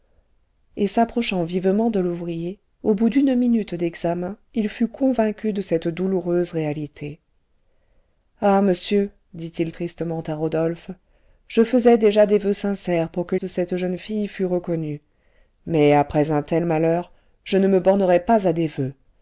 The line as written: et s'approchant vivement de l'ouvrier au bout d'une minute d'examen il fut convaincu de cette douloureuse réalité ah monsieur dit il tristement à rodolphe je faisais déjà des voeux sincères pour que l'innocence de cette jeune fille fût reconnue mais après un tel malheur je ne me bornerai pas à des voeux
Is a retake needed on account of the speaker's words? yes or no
yes